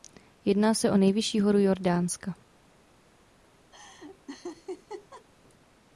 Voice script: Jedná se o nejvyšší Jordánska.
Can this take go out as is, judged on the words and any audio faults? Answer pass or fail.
fail